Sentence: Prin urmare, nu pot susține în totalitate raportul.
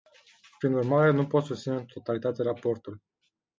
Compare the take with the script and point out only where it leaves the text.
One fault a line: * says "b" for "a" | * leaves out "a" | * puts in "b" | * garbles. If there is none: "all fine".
all fine